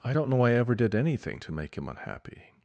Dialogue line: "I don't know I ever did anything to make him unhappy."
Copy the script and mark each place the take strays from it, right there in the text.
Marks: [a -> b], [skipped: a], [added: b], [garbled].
"I don't know I ever did anything to make him unhappy."